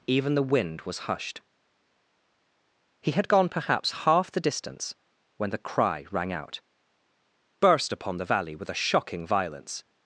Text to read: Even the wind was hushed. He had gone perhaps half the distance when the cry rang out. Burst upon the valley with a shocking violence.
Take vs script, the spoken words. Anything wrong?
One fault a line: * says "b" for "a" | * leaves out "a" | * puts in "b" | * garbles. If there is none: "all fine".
all fine